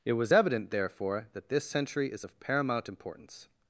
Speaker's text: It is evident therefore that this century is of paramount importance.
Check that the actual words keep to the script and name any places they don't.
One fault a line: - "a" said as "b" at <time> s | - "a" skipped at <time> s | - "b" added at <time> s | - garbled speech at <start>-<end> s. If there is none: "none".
- "is" said as "was" at 0.1 s